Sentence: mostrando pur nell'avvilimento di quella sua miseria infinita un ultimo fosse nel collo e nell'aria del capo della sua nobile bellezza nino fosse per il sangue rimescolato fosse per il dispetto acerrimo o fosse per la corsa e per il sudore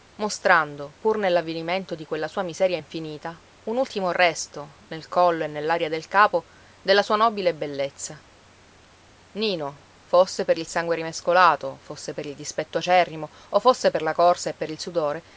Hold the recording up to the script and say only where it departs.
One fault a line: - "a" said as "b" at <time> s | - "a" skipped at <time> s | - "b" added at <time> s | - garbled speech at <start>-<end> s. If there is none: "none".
- "fosse" said as "resto" at 4.1 s